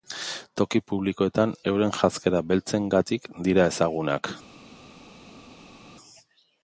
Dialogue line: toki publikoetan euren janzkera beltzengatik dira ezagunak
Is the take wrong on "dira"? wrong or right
right